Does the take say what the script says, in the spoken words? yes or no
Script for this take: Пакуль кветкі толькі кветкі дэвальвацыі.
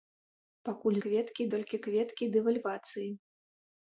yes